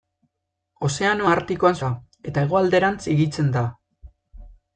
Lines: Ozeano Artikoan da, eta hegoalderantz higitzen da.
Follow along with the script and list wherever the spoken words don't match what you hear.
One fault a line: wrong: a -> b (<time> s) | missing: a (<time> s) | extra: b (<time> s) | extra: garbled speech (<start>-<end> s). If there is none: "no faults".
no faults